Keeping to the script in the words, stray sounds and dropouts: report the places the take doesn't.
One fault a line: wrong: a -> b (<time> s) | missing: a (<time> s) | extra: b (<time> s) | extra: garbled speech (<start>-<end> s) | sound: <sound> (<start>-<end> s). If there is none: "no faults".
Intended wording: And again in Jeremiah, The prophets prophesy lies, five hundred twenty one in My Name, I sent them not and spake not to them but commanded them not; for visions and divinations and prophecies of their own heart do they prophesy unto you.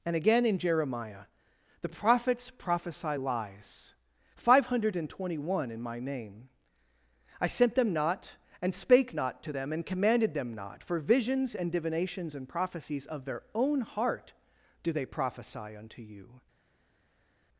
wrong: but -> and (9.7 s)